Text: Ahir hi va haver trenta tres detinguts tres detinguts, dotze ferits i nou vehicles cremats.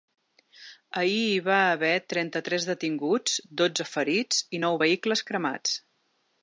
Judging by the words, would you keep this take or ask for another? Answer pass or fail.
fail